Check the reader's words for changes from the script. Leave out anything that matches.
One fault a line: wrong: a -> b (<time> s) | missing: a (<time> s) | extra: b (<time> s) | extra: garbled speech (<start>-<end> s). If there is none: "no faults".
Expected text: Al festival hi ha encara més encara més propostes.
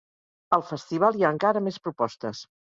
missing: encara més (1.8 s)